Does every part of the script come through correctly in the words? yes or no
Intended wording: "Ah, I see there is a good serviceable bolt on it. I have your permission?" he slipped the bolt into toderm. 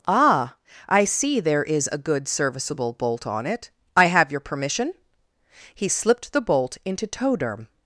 yes